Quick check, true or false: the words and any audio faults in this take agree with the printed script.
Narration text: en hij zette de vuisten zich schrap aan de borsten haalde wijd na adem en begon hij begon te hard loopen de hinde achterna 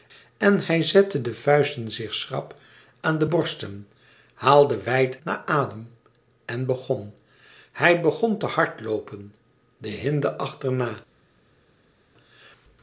true